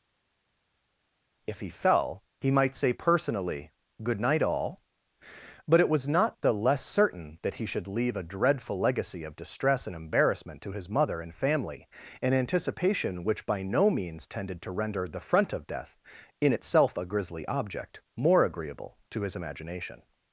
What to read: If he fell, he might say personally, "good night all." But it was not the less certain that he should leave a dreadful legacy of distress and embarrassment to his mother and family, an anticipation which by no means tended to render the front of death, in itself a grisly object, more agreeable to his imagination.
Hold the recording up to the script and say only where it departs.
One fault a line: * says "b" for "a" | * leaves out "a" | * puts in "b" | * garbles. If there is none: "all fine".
all fine